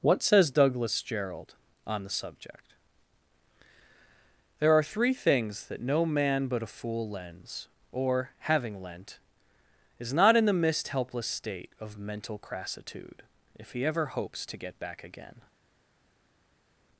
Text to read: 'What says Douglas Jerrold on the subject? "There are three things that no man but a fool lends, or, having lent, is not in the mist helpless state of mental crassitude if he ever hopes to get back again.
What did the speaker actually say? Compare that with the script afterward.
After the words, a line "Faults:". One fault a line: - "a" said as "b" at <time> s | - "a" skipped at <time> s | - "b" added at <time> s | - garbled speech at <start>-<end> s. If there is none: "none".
'What says Douglas Jerrold on the subject? "There are three things that no man but a fool lends, or, having lent, is not in the mist helpless state of mental crassitude if he ever hopes to get back again.
Faults:
none